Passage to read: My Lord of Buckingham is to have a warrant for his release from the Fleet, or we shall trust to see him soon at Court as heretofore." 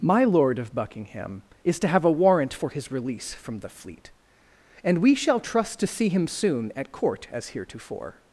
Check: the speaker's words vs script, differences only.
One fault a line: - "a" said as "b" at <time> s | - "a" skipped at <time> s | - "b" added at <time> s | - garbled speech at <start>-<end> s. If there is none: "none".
- "or" said as "and" at 4.8 s